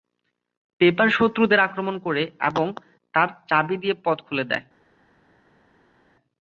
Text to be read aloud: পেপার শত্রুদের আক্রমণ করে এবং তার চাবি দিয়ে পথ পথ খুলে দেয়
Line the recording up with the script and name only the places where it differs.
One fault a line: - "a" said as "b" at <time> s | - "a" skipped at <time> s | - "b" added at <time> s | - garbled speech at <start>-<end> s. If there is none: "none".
- "পথ" skipped at 4.2 s